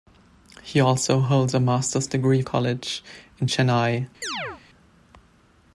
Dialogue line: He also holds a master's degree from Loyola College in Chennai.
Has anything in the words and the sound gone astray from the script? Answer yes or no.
yes